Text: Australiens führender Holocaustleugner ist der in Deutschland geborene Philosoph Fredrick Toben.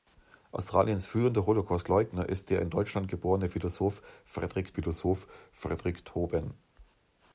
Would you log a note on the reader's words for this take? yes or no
yes